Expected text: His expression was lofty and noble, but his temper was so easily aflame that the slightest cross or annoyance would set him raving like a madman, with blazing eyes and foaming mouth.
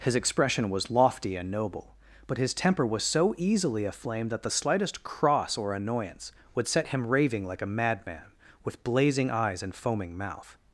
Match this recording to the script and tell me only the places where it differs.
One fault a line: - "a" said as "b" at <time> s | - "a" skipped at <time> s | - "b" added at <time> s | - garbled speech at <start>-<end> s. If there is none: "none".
none